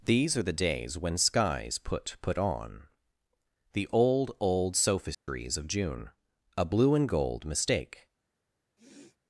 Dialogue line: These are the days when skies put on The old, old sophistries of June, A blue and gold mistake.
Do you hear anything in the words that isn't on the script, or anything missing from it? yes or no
yes